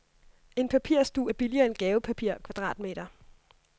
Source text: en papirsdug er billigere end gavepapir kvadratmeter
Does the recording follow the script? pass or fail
pass